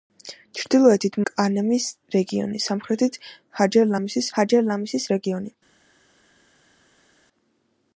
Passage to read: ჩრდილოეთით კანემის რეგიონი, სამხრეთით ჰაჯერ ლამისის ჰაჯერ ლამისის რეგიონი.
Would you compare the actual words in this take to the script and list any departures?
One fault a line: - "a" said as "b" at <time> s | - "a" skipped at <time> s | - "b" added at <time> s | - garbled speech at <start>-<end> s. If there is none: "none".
none